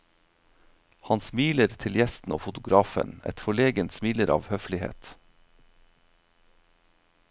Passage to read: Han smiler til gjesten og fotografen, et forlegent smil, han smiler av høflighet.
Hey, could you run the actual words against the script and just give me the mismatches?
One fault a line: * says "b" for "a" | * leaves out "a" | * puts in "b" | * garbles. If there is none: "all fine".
* leaves out "smil han"